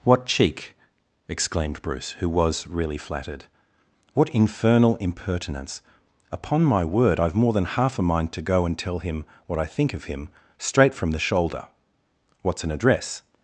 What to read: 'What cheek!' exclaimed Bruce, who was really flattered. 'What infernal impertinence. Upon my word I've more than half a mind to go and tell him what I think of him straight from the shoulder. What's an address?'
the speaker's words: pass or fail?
pass